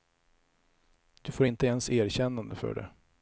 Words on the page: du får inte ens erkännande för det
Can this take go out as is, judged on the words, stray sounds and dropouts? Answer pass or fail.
pass